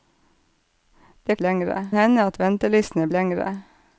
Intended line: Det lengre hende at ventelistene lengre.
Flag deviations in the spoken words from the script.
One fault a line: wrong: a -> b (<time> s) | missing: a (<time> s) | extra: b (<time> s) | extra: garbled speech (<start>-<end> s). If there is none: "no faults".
no faults